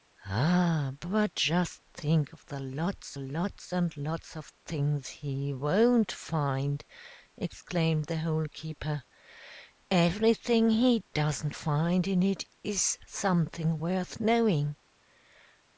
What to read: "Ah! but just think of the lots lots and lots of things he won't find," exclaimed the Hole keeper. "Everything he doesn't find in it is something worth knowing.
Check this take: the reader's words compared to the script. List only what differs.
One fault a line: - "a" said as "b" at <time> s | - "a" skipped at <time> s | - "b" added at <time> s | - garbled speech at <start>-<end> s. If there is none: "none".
none